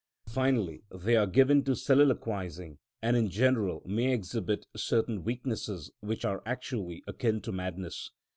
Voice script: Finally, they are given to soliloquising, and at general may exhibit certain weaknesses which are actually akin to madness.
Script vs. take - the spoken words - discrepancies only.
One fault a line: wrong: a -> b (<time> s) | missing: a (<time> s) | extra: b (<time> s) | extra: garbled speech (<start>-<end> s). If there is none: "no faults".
wrong: at -> in (3.1 s)